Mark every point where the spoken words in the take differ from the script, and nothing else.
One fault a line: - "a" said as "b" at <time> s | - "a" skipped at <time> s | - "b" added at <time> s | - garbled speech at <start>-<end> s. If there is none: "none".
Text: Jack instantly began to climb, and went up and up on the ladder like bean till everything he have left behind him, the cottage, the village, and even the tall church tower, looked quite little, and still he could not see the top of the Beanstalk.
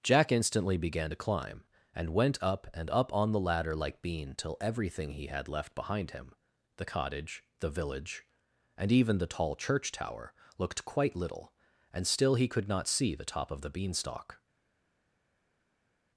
- "have" said as "had" at 5.3 s